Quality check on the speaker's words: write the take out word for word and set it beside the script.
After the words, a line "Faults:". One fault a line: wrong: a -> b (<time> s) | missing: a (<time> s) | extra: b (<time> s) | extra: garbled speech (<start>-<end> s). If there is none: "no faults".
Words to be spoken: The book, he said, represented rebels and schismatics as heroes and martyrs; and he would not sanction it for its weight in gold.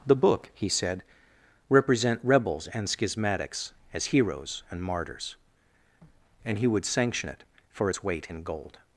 The book, he said, represent rebels and schismatics as heroes and martyrs; and he would sanction it for its weight in gold.
Faults:
wrong: represented -> represent (1.7 s)
missing: not (6.8 s)